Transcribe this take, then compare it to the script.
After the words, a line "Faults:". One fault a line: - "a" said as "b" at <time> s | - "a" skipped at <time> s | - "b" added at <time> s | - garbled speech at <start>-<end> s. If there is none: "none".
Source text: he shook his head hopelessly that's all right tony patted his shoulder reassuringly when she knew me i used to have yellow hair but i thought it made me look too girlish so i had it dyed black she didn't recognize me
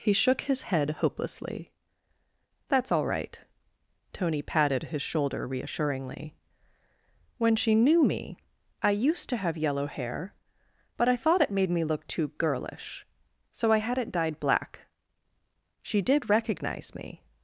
he shook his head hopelessly that's all right tony patted his shoulder reassuringly when she knew me i used to have yellow hair but i thought it made me look too girlish so i had it dyed black she did recognize me
Faults:
- "didn't" said as "did" at 16.0 s